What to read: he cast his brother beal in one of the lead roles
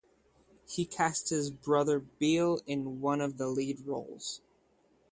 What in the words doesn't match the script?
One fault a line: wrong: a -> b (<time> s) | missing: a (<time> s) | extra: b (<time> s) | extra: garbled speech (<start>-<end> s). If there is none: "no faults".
no faults